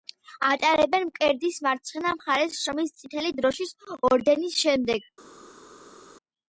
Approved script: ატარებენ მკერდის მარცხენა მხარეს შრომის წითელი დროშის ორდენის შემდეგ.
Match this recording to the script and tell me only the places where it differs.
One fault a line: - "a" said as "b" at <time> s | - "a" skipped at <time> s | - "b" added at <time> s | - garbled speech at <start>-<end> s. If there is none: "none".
none